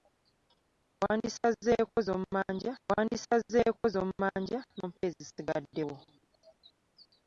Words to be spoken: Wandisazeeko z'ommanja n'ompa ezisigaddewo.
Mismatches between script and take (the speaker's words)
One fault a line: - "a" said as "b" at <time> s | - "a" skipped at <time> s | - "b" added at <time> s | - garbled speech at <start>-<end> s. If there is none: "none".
- "wandisazeeko z'ommanja" added at 2.9 s